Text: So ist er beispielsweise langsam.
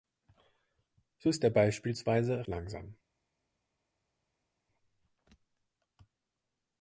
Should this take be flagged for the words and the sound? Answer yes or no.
no